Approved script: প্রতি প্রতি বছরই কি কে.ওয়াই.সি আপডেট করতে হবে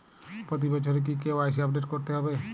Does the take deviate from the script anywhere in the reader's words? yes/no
yes